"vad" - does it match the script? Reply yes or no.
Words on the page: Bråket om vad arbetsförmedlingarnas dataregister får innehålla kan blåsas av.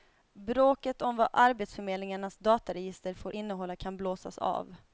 yes